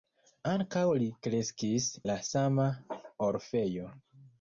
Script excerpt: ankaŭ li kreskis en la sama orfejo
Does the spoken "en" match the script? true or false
false